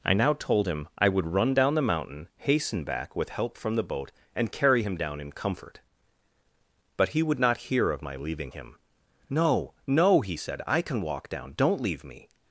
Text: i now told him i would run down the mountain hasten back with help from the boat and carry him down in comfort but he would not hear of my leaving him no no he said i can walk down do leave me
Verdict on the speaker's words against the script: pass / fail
fail